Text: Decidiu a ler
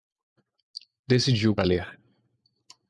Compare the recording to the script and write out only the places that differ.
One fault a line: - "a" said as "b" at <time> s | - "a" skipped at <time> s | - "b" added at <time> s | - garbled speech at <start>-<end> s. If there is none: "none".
none